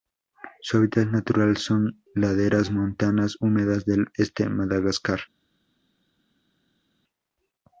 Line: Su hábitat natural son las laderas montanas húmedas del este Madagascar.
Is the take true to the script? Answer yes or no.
no